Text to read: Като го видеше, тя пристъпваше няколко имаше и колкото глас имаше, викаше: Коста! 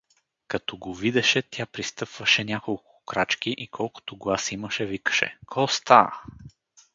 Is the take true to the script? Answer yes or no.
no